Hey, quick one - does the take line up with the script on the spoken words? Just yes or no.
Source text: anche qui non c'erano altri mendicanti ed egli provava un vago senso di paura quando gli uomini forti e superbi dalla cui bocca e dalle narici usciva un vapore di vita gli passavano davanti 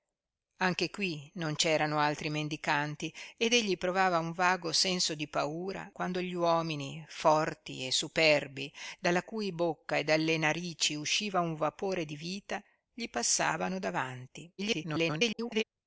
no